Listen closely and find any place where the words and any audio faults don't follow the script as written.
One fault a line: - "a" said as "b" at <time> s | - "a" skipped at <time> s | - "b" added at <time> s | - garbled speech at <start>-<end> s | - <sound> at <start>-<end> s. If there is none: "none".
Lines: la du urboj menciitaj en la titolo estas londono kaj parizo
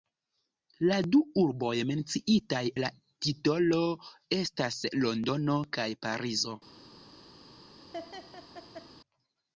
- "en" skipped at 2.6 s
- laugh at 7.9-8.9 s